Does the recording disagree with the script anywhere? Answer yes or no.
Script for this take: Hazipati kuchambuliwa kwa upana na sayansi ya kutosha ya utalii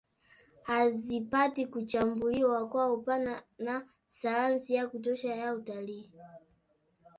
no